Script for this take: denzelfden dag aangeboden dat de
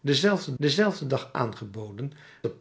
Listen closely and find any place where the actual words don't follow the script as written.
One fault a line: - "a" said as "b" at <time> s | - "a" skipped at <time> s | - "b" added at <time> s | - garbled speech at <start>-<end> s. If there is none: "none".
- "denzelfden" added at 0.6 s
- "dat" skipped at 2.1 s